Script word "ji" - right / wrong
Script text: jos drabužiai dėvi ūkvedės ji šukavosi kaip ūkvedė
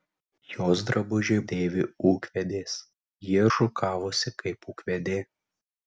right